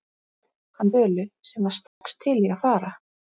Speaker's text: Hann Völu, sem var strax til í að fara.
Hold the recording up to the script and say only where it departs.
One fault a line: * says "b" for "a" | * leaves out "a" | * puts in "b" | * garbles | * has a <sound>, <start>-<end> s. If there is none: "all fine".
* has a dropout, 1.9-2.0 s